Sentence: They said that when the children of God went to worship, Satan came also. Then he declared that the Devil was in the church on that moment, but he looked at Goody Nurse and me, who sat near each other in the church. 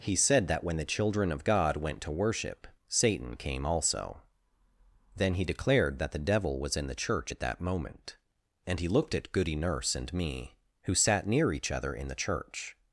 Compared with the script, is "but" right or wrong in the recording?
wrong